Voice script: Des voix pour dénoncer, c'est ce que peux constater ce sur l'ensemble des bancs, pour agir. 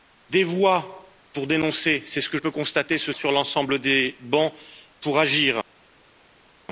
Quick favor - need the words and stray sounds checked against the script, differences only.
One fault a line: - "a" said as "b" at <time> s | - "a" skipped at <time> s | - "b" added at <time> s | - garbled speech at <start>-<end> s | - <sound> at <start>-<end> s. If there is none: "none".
none